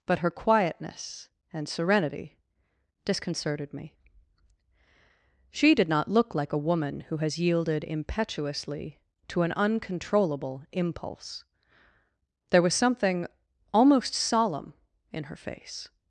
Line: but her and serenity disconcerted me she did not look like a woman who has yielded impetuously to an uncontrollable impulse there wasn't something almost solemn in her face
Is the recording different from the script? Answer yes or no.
yes